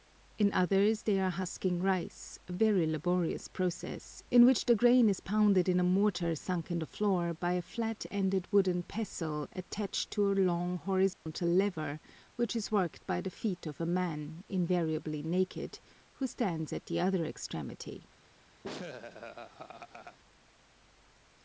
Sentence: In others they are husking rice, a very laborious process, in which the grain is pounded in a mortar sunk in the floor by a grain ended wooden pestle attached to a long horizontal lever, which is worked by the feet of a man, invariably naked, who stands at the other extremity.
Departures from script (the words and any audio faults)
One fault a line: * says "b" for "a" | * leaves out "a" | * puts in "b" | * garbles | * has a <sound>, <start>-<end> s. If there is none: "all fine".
* says "flat" for "grain"
* has a dropout, 11.1-11.3 s
* has a laugh, 18.6-20.2 s